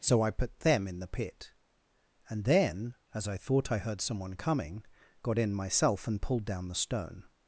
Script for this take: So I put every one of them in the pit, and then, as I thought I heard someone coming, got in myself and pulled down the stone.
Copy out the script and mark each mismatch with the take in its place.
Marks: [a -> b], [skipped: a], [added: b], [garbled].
So I put [skipped: every one of] them in the pit, and then, as I thought I heard someone coming, got in myself and pulled down the stone.